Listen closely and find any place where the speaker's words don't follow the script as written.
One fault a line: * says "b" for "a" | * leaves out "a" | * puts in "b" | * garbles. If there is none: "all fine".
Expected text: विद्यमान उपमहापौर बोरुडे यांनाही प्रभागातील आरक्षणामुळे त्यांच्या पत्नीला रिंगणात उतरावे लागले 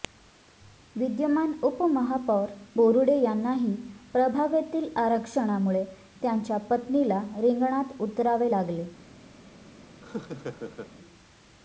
all fine